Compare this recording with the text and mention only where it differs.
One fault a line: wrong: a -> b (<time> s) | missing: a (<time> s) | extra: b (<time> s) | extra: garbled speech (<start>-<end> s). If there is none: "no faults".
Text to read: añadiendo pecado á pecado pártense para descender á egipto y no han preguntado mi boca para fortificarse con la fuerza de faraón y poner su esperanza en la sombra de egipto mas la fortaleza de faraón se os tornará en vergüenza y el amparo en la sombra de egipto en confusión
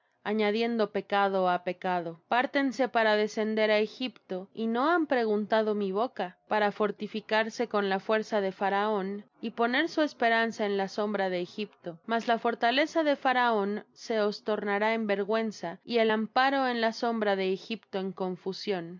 no faults